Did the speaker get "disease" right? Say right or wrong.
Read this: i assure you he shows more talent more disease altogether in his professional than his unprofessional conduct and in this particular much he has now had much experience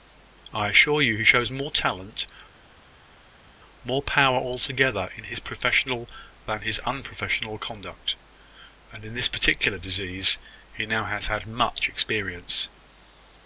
wrong